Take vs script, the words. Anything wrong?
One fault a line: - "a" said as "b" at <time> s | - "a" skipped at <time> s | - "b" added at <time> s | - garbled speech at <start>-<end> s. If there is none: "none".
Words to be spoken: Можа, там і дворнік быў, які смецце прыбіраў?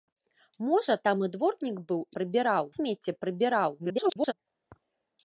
- "які" said as "прыбіраў" at 2.2 s
- garbled speech at 3.8-4.3 s